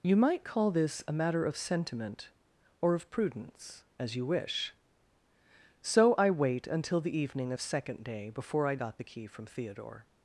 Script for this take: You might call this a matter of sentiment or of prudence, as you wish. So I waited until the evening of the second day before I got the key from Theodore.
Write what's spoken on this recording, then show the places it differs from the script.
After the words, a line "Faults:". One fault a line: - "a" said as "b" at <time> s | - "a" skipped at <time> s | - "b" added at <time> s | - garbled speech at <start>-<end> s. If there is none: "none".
You might call this a matter of sentiment or of prudence, as you wish. So I wait until the evening of second day before I got the key from Theodore.
Faults:
- "waited" said as "wait" at 6.3 s
- "the" skipped at 7.6 s